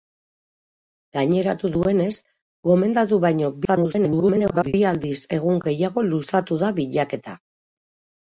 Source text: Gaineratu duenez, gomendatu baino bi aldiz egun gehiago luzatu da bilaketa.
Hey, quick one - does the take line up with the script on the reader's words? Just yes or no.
no